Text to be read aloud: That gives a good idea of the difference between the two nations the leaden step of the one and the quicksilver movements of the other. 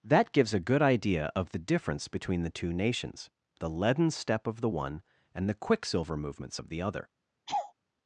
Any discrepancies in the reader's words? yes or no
no